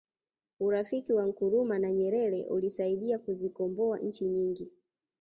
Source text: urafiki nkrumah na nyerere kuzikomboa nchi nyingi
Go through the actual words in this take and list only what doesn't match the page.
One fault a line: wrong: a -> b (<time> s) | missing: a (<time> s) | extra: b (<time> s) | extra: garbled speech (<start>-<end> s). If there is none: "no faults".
extra: wa (1.1 s)
extra: ulisaidia (2.5 s)